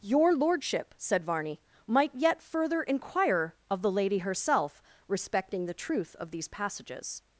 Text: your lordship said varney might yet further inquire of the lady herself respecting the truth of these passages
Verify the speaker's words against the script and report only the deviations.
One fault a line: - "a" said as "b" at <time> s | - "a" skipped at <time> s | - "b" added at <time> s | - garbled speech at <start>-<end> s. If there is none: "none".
none